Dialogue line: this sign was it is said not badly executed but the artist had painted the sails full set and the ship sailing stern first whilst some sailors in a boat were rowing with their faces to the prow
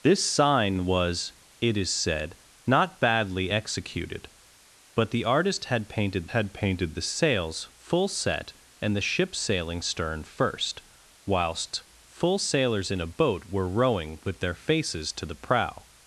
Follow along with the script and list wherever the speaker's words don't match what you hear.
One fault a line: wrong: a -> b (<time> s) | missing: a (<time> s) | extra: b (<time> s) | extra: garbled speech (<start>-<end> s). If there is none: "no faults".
extra: had painted (6.3 s)
wrong: some -> full (12.1 s)